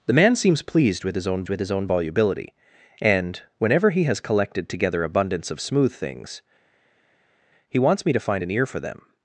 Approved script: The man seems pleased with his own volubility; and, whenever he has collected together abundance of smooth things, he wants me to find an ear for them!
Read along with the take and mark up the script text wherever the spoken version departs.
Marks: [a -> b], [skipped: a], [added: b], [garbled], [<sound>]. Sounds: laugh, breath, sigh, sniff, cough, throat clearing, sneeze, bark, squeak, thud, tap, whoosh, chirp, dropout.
The man seems pleased with his own [added: with his own] volubility; and, whenever he has collected together abundance of smooth things, he wants me to find an ear for them!